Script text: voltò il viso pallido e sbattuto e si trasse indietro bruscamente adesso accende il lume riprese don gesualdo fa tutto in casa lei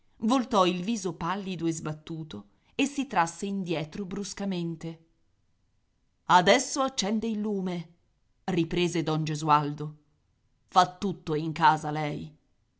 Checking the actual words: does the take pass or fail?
pass